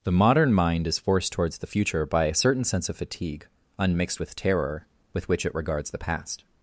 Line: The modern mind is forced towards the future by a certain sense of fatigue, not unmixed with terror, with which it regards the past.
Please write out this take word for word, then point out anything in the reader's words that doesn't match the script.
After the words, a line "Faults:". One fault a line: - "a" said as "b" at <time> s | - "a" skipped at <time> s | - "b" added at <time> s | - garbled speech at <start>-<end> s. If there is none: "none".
The modern mind is forced towards the future by a certain sense of fatigue, unmixed with terror, with which it regards the past.
Faults:
- "not" skipped at 3.5 s